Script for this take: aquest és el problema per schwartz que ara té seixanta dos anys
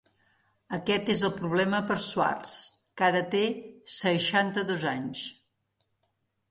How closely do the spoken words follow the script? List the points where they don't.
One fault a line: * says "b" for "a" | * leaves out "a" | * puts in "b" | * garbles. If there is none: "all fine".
all fine